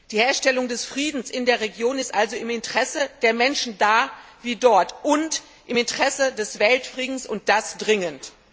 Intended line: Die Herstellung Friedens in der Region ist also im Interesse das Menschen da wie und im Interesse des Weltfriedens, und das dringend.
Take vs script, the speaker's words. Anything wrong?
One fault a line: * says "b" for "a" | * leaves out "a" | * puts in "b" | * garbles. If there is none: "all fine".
* puts in "des"
* says "der" for "das"
* puts in "dort"